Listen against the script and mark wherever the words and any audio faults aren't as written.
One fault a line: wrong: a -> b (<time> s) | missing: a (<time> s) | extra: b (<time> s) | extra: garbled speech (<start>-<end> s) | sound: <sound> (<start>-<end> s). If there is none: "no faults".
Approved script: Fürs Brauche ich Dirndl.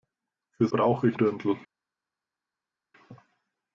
no faults